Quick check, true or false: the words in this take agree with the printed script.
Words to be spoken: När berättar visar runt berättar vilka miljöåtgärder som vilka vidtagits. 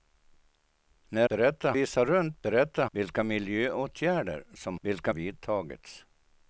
true